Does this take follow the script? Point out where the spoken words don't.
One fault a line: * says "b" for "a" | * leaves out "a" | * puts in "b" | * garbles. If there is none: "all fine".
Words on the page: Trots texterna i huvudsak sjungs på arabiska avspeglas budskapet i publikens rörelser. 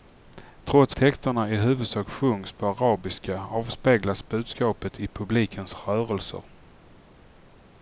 all fine